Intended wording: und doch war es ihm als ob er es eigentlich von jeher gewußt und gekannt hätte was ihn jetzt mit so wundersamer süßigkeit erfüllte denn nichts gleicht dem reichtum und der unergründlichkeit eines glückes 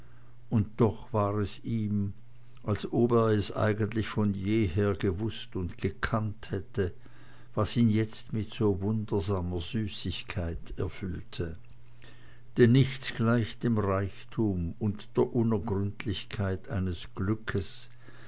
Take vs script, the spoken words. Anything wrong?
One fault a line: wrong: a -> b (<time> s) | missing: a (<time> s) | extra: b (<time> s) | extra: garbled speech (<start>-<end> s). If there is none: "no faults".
no faults